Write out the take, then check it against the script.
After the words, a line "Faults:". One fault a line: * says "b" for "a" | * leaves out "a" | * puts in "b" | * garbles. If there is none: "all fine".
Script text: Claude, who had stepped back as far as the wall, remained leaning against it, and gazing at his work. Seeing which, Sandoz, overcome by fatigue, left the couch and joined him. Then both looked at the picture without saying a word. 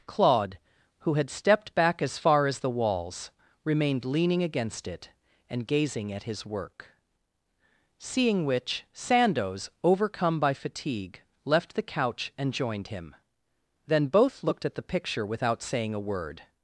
Claude, who had stepped back as far as the walls, remained leaning against it, and gazing at his work. Seeing which, Sandoz, overcome by fatigue, left the couch and joined him. Then both looked at the picture without saying a word.
Faults:
* says "walls" for "wall"